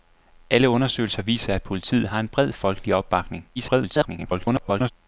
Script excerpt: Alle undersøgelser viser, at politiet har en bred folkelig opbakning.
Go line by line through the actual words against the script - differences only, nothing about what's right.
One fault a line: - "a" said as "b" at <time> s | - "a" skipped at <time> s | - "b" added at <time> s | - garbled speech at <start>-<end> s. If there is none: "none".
- garbled speech at 3.6-4.9 s